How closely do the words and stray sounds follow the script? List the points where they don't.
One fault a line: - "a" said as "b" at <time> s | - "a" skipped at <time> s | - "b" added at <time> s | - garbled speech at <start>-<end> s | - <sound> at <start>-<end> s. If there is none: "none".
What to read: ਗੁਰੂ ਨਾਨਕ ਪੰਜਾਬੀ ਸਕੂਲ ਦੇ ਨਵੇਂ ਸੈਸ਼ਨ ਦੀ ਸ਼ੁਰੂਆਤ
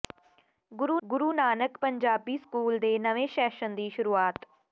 - "ਗੁਰੂ" added at 1.0 s